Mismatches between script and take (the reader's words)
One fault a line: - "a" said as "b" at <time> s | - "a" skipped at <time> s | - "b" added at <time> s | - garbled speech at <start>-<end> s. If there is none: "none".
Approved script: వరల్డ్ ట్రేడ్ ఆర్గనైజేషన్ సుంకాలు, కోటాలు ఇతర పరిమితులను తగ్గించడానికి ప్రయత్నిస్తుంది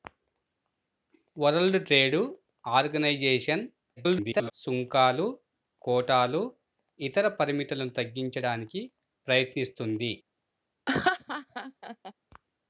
- garbled speech at 4.0-4.5 s